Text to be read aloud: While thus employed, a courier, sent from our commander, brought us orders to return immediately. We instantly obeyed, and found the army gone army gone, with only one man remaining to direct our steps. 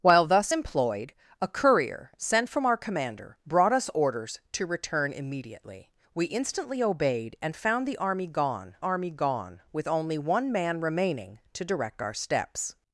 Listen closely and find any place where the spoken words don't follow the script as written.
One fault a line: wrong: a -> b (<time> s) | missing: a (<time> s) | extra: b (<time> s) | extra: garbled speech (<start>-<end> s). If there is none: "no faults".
no faults